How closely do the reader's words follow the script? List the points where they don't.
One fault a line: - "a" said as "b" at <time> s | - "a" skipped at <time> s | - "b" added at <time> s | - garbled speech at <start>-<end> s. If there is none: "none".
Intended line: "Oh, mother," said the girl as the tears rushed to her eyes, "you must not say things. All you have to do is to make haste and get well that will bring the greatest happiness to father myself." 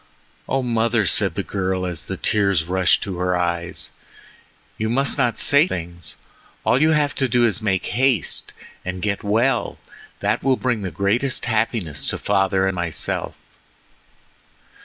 none